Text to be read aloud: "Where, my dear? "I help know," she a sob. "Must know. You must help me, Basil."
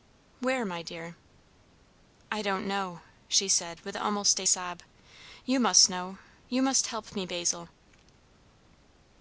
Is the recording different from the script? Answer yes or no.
yes